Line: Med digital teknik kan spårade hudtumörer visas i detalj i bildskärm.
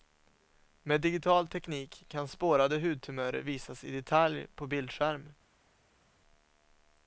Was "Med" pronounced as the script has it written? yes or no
yes